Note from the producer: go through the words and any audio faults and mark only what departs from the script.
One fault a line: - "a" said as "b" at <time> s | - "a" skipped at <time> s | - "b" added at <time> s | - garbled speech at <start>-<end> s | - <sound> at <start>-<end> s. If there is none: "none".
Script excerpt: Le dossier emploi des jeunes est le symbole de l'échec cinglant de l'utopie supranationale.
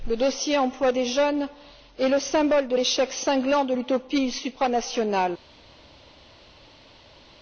none